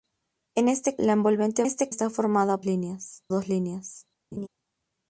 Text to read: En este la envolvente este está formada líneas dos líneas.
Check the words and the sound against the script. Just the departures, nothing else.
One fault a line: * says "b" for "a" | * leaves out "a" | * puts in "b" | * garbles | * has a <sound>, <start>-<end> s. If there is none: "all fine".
* has a laugh, 4.3-4.5 s